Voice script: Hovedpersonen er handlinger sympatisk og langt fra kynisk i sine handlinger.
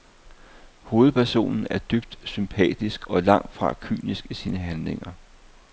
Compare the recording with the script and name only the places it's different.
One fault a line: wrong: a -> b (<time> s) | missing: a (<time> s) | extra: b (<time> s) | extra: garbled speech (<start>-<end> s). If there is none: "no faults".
wrong: handlinger -> dybt (1.8 s)